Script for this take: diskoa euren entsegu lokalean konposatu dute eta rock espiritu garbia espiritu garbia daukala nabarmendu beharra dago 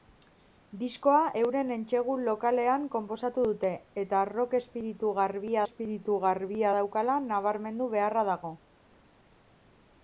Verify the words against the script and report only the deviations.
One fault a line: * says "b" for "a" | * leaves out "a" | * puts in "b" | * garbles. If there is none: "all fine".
all fine